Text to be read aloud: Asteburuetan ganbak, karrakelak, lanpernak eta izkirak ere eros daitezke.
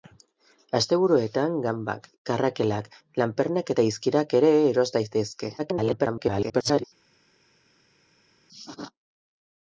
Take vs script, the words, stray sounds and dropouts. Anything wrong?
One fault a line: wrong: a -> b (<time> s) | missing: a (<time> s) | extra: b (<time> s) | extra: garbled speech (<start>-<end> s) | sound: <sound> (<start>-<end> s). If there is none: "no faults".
extra: garbled speech (5.6-6.8 s)